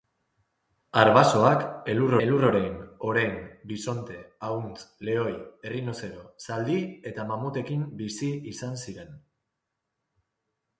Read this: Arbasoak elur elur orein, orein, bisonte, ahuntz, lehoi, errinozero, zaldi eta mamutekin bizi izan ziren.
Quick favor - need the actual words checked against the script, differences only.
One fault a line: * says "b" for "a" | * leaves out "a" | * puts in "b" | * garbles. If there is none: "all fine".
all fine